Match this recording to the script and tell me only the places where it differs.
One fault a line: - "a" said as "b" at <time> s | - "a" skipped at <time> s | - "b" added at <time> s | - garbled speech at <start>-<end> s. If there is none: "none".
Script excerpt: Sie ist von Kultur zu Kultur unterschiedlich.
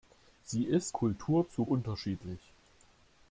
- "von" skipped at 1.0 s
- "Kultur" skipped at 1.6 s